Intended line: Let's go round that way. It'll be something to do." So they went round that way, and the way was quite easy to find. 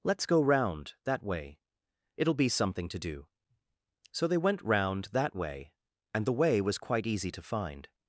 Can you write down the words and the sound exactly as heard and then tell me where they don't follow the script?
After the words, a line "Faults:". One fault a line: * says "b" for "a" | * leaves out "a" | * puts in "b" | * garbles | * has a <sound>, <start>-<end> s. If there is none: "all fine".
Let's go round that way. It'll be something to do." So they went round that way, and the way was quite easy to find.
Faults:
all fine